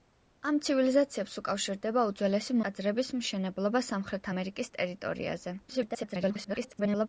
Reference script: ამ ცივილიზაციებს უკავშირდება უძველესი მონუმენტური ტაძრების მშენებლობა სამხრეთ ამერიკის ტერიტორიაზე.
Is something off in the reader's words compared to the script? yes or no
yes